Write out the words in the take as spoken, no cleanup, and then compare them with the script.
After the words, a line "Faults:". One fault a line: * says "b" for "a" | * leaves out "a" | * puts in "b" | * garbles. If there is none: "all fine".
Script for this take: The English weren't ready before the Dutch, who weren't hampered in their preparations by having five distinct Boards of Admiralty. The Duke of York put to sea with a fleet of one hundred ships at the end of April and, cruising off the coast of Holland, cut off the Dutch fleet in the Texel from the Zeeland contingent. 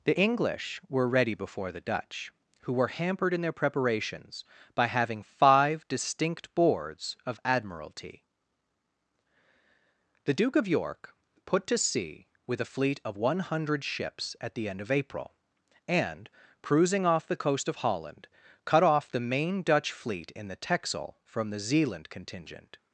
The English were ready before the Dutch, who were hampered in their preparations by having five distinct Boards of Admiralty. The Duke of York put to sea with a fleet of one hundred ships at the end of April and, cruising off the coast of Holland, cut off the main Dutch fleet in the Texel from the Zeeland contingent.
Faults:
* says "were" for "weren't"
* says "were" for "weren't"
* puts in "main"